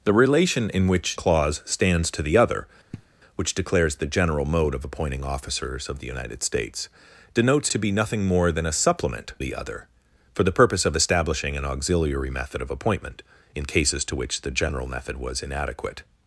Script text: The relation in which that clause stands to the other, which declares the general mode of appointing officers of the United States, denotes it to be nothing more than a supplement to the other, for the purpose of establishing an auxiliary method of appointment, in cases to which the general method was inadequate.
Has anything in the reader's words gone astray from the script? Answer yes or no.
yes